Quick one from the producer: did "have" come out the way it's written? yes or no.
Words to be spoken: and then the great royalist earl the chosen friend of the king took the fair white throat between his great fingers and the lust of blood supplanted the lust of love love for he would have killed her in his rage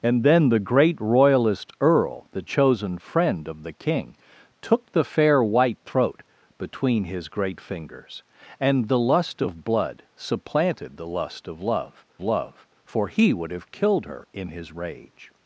yes